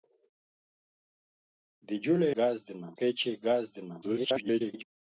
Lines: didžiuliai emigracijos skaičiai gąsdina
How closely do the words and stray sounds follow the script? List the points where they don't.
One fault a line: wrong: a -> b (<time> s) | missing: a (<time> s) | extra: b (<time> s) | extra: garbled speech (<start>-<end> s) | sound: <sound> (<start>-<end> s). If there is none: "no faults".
wrong: emigracijos -> gąsdina (2.4 s)
extra: garbled speech (4.0-4.8 s)